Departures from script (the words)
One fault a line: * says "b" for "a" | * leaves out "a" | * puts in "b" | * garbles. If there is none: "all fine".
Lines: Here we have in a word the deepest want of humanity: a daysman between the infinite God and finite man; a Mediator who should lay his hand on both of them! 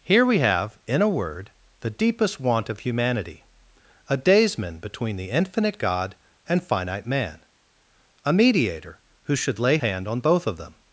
* leaves out "his"